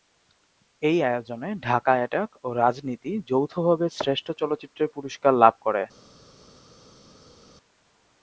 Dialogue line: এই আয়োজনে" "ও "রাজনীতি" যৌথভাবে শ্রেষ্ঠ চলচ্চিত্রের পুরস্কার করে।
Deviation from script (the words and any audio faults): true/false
true